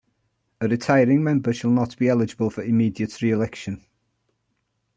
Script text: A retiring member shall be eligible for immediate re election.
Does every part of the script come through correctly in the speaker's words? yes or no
no